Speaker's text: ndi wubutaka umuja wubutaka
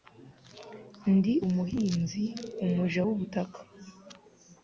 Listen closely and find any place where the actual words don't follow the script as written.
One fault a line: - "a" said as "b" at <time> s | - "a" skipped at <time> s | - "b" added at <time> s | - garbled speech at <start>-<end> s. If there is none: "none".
- "wubutaka" said as "umuhinzi" at 1.5 s